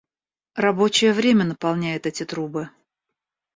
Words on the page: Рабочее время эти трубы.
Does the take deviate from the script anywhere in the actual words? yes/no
yes